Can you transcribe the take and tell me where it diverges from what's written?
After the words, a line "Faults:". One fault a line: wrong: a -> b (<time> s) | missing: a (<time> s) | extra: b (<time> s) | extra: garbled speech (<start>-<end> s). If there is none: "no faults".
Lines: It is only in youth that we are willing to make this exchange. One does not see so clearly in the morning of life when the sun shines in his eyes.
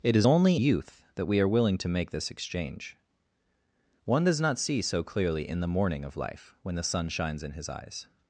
It is only youth that we are willing to make this exchange. One does not see so clearly in the morning of life when the sun shines in his eyes.
Faults:
missing: in (0.6 s)